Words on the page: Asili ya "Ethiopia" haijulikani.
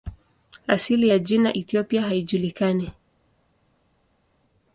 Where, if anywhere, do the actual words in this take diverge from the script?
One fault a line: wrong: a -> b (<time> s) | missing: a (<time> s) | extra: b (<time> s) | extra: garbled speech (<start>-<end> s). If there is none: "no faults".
extra: jina (1.2 s)